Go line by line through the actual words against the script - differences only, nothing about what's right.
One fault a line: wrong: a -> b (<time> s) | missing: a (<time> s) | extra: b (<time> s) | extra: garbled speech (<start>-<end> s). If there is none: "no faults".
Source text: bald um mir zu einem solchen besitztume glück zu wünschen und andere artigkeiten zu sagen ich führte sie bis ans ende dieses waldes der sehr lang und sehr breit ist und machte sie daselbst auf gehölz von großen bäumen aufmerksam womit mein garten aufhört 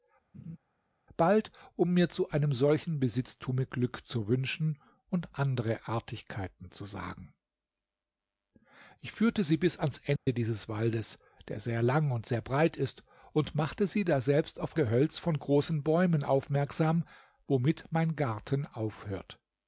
no faults